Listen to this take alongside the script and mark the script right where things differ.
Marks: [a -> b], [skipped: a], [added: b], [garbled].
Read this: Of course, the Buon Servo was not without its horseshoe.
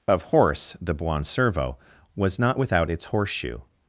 Of [course, -> horse] the Buon Servo was not without its horseshoe.